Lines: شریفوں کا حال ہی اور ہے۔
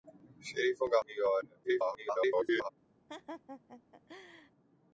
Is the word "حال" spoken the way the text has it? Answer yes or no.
no